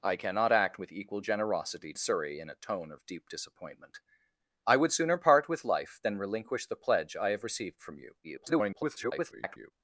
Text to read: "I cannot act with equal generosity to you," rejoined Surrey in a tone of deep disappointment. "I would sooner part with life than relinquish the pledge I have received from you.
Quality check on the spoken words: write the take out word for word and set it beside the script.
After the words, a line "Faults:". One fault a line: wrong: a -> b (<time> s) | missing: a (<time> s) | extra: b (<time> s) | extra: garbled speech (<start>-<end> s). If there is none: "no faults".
"I cannot act with equal generosity Surrey in a tone of deep disappointment. "I would sooner part with life than relinquish the pledge I have received from you. [garbled]
Faults:
missing: to you rejoined (1.9 s)
extra: garbled speech (8.2-9.7 s)